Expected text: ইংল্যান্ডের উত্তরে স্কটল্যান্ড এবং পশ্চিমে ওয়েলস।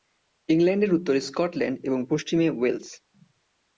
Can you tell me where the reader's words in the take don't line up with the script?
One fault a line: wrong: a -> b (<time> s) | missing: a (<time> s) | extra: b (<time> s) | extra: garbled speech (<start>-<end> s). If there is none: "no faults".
no faults